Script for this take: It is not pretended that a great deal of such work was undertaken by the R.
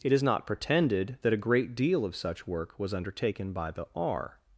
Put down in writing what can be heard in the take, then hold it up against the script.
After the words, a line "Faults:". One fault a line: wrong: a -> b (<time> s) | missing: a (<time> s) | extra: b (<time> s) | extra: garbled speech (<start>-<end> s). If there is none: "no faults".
It is not pretended that a great deal of such work was undertaken by the R.
Faults:
no faults